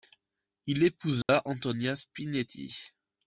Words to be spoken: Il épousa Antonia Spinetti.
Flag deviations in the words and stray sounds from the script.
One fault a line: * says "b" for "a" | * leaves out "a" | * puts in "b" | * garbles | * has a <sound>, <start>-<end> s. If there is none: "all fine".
* has a dropout, 1.2-1.3 s